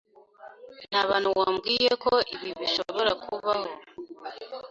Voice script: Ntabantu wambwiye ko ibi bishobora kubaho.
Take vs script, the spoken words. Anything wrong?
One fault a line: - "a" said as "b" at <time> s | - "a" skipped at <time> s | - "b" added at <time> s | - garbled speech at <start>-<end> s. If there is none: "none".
none